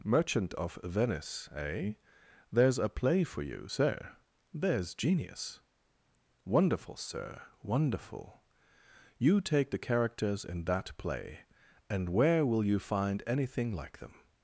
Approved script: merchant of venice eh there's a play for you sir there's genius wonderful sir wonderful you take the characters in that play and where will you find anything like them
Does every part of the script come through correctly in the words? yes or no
yes